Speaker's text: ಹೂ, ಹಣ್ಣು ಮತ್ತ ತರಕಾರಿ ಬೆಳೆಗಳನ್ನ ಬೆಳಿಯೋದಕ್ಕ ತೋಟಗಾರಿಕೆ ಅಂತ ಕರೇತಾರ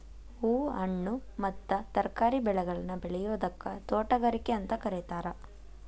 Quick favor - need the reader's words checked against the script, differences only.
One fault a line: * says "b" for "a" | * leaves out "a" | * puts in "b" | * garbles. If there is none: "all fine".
all fine